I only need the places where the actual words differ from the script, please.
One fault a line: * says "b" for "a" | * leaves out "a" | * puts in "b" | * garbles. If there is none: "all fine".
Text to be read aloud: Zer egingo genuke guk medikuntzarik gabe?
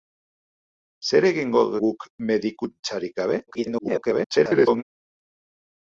* leaves out "genuke"
* garbles